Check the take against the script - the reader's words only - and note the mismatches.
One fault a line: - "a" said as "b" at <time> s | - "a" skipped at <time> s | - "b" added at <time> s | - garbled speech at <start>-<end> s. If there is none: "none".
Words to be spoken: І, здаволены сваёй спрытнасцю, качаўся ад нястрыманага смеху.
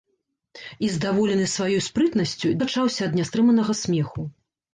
none